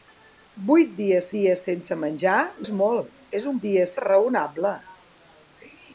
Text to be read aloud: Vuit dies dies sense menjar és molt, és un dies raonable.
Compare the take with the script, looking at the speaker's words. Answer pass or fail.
pass